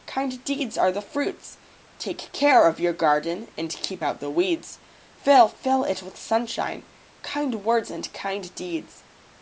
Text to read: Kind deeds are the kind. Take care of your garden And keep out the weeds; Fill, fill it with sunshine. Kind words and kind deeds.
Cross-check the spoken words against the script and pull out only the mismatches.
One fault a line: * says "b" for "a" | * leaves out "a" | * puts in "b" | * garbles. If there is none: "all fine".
* says "fruits" for "kind"